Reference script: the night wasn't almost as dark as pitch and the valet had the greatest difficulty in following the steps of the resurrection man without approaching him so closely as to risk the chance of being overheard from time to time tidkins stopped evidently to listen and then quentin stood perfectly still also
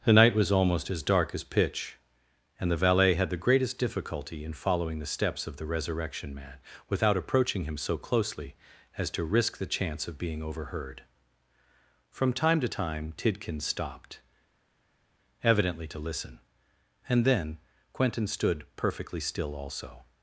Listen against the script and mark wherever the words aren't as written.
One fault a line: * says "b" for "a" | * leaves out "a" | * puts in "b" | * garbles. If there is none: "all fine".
* says "was" for "wasn't"